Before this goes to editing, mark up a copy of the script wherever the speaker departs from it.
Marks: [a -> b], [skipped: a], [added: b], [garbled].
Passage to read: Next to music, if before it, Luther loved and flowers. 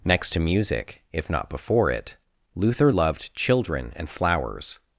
Next to music, if [added: not] before it, Luther loved [added: children] and flowers.